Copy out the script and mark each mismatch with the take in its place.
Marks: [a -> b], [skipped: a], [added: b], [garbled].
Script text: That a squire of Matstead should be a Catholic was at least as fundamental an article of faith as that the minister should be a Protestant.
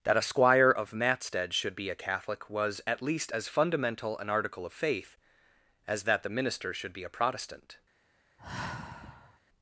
That a squire of Matstead should be a Catholic was at least as fundamental an article of faith as that the minister should be a Protestant.